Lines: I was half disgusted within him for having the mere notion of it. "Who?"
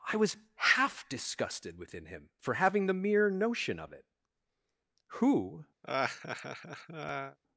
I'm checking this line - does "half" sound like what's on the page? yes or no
yes